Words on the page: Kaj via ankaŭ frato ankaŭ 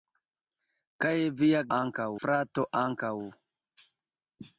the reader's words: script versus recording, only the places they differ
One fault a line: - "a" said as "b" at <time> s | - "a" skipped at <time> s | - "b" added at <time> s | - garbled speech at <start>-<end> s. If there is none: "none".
none